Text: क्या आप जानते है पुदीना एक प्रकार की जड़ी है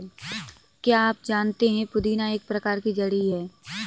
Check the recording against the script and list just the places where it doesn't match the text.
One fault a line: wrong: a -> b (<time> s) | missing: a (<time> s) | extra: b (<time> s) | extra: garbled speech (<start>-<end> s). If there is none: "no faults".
no faults